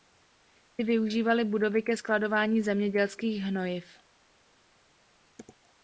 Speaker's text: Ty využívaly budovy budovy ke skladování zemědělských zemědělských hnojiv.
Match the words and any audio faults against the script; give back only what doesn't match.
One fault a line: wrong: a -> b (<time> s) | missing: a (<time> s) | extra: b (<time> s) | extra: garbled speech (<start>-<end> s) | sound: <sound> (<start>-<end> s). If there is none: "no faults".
missing: budovy (1.8 s)
missing: zemědělských (3.4 s)